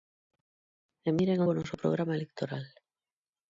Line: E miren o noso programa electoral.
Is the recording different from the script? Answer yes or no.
no